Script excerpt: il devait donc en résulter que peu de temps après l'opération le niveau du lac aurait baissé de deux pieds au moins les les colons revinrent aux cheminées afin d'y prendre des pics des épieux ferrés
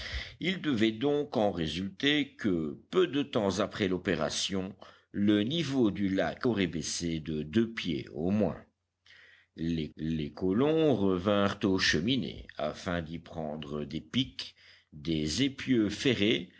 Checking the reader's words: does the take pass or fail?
pass